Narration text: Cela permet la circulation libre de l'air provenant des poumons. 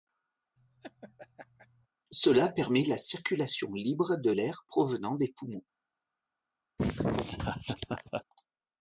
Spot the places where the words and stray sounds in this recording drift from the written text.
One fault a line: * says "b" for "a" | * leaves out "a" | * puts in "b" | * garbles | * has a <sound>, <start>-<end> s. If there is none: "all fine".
* has a laugh, 0.6-1.9 s
* has a laugh, 6.8-8.2 s